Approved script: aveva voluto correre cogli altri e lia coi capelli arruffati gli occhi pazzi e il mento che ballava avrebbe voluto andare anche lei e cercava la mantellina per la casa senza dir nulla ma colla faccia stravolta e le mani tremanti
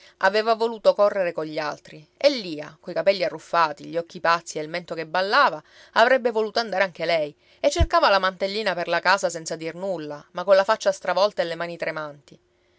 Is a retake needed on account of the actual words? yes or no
no